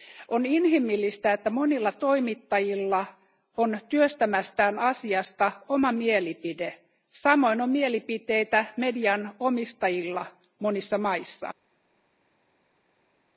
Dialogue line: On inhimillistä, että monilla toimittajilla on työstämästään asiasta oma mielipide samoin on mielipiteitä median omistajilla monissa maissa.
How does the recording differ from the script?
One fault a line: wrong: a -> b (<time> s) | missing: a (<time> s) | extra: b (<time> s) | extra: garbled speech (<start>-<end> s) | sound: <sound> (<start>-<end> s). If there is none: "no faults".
no faults